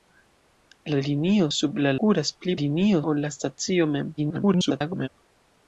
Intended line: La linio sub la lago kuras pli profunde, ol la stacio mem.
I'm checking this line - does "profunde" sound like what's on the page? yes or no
no